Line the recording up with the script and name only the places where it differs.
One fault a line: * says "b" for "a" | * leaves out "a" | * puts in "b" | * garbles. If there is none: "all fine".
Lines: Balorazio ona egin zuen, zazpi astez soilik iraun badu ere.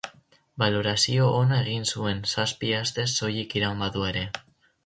all fine